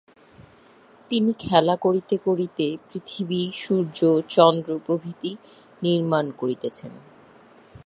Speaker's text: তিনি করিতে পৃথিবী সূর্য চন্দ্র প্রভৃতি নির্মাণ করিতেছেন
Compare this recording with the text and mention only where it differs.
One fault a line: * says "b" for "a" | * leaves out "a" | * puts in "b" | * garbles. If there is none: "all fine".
* puts in "খেলা করিতে"